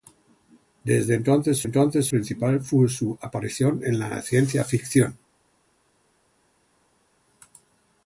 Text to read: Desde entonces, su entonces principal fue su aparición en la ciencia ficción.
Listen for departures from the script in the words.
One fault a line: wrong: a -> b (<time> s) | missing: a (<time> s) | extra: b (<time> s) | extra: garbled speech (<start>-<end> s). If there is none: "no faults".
no faults